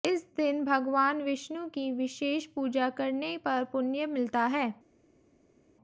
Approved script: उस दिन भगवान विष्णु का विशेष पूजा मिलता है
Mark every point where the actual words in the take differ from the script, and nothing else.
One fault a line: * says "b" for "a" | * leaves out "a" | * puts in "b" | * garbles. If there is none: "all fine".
* says "इस" for "उस"
* says "की" for "का"
* puts in "करने पर पुण्य"